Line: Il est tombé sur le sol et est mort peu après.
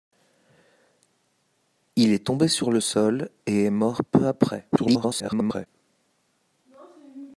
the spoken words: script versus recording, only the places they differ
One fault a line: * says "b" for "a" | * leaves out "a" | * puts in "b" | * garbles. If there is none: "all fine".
* garbles